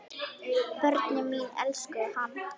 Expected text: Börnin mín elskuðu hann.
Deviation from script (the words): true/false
false